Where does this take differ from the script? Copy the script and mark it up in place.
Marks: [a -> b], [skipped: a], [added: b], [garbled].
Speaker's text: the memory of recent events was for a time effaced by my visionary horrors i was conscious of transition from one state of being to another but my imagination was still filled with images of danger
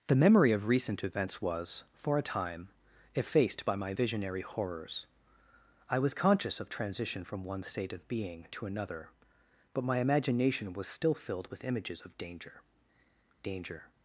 the memory of recent events was for a time effaced by my visionary horrors i was conscious of transition from one state of being to another but my imagination was still filled with images of danger [added: danger]